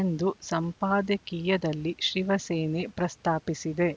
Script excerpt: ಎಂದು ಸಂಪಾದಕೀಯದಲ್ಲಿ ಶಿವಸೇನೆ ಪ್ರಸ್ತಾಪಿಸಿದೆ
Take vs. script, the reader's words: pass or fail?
pass